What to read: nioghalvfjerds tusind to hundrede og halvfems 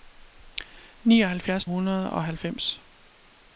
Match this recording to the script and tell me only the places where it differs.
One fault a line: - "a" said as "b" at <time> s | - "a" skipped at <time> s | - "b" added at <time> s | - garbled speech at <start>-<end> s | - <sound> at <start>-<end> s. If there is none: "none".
- "tusind to" skipped at 1.6 s